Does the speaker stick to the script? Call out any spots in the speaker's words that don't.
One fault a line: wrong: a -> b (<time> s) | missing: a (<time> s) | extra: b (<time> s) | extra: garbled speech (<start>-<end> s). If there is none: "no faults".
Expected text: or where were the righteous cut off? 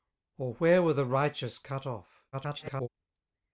extra: garbled speech (2.3-2.9 s)